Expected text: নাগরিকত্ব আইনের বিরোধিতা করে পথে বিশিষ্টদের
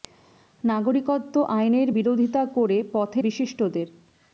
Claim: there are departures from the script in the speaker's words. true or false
false